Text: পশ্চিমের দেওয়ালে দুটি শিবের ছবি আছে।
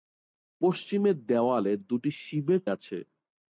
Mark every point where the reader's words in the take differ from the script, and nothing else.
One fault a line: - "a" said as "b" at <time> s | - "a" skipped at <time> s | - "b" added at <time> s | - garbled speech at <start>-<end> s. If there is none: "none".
- "ছবি" skipped at 2.6 s